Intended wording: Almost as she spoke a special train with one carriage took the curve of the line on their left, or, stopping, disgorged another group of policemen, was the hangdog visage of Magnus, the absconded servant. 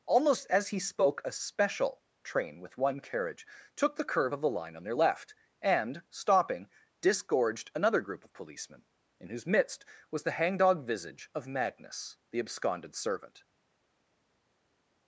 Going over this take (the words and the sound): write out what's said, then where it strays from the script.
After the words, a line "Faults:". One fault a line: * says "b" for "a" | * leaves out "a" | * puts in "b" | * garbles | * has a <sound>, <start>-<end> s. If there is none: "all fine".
Almost as he spoke a special train with one carriage took the curve of the line on their left, and, stopping, disgorged another group of policemen, in whose midst was the hangdog visage of Magnus, the absconded servant.
Faults:
* says "he" for "she"
* says "and" for "or"
* puts in "in whose midst"